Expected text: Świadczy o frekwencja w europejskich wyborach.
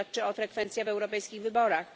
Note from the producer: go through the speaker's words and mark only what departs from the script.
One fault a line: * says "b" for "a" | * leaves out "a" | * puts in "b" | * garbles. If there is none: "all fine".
all fine